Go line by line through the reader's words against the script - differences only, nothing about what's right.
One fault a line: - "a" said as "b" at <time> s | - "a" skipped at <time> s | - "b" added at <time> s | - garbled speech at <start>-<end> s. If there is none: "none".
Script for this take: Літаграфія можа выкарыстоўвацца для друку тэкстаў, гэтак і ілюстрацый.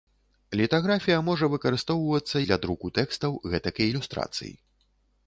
none